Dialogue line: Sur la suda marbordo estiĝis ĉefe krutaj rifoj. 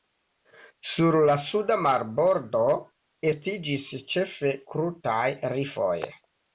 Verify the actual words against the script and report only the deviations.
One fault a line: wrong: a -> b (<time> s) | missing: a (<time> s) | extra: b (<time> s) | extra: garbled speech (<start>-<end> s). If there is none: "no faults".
no faults